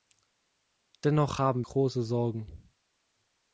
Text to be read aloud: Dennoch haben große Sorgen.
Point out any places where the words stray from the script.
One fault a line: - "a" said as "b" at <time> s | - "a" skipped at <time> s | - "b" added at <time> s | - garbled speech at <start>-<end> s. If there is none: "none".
none